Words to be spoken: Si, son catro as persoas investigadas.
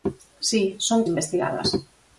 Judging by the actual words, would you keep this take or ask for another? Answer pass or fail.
fail